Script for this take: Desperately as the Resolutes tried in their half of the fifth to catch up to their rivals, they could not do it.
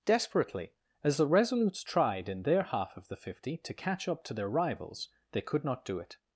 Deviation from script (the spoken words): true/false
true